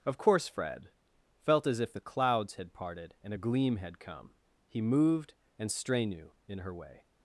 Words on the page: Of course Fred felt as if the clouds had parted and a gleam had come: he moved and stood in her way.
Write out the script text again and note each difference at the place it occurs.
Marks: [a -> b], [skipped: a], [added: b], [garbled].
Of course Fred felt as if the clouds had parted and a gleam had come: he moved and [stood -> strenu] in her way.